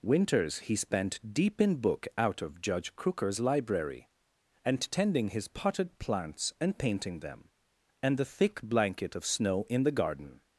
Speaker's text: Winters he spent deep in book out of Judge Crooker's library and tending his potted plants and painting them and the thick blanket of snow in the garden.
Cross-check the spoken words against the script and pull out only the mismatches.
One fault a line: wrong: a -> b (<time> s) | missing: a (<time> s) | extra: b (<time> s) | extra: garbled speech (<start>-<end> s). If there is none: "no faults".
no faults